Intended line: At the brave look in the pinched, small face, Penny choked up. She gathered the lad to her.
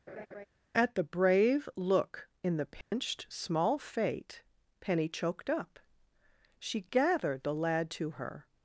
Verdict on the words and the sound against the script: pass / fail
fail